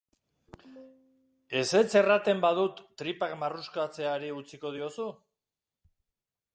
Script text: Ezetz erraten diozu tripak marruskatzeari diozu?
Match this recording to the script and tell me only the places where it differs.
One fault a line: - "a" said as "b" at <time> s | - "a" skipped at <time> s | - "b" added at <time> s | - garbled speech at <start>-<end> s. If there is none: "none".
- "diozu" said as "badut" at 2.5 s
- "utziko" added at 4.4 s